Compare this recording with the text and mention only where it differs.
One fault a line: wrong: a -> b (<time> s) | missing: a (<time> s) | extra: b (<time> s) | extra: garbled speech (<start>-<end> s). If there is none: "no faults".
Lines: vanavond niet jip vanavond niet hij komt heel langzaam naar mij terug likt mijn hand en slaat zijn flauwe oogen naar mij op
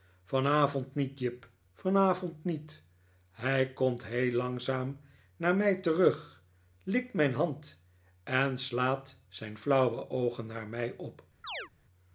no faults